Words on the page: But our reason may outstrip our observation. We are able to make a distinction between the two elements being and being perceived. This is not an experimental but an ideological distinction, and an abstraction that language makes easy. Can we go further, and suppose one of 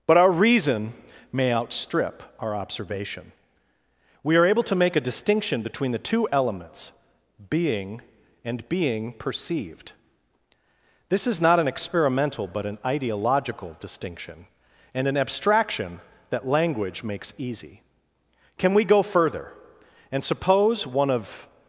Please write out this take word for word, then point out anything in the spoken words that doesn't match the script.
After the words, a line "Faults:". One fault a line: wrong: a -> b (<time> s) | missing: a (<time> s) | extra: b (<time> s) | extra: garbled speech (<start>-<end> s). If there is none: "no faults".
But our reason may outstrip our observation. We are able to make a distinction between the two elements being and being perceived. This is not an experimental but an ideological distinction, and an abstraction that language makes easy. Can we go further, and suppose one of
Faults:
no faults